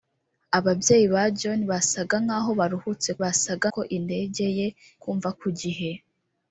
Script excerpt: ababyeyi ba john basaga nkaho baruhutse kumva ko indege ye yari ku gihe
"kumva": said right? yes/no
no